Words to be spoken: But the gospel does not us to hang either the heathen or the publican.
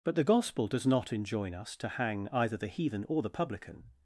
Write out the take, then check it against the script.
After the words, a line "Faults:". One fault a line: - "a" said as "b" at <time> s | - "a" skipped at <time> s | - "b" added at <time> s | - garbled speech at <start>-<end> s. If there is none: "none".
But the gospel does not enjoin us to hang either the heathen or the publican.
Faults:
- "enjoin" added at 1.1 s